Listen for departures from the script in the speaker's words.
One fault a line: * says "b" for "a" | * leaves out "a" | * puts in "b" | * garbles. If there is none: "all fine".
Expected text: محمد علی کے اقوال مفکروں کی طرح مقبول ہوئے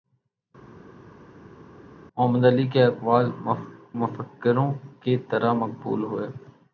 all fine